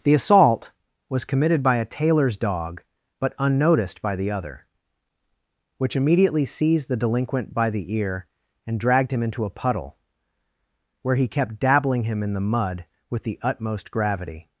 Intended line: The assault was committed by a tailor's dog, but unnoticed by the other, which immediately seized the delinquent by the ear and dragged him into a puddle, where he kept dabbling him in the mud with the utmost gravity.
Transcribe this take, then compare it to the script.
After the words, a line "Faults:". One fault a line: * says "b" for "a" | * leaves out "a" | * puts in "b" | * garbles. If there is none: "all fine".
The assault was committed by a tailor's dog, but unnoticed by the other, which immediately seized the delinquent by the ear and dragged him into a puddle, where he kept dabbling him in the mud with the utmost gravity.
Faults:
all fine